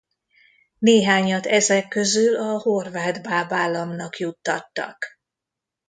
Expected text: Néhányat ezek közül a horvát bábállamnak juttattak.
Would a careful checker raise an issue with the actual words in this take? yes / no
no